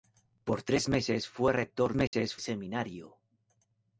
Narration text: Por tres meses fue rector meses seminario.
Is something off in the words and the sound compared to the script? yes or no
yes